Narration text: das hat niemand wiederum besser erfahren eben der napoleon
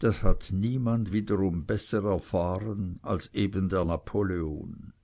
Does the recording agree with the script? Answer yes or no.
no